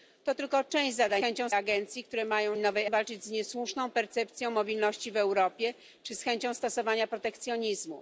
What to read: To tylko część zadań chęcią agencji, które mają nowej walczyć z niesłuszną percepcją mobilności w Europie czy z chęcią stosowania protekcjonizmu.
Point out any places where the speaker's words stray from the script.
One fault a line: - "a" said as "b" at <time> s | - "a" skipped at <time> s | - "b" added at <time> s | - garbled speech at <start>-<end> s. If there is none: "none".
none